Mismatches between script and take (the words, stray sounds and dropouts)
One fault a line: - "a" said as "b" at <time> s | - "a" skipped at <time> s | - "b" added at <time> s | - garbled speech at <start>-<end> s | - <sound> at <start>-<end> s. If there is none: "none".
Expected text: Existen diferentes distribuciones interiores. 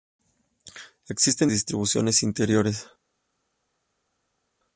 - "diferentes" skipped at 1.5 s